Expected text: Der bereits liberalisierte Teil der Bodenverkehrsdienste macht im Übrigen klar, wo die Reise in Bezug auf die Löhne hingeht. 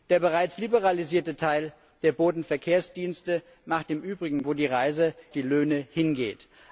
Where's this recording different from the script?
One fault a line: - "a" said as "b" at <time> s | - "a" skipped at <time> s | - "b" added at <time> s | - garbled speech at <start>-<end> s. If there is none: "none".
- "klar" skipped at 4.4 s
- "in Bezug auf" skipped at 5.1 s